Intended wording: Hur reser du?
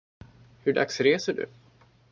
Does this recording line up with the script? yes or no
no